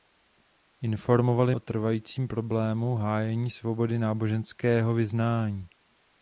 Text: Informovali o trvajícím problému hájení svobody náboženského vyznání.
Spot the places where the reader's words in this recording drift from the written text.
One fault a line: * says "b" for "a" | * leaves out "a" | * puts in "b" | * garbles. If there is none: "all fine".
all fine